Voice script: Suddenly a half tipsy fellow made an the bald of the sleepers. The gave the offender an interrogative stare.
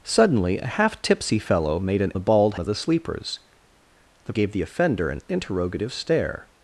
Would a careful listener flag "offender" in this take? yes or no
no